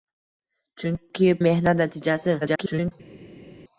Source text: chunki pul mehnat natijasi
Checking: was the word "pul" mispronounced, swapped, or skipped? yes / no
yes